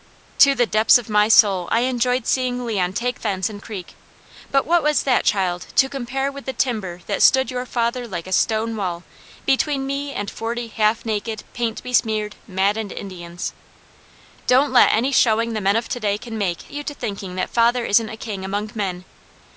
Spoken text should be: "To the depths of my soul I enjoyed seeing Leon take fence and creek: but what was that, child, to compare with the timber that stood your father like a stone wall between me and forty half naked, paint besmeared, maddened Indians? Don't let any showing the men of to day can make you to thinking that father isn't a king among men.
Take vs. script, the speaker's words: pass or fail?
pass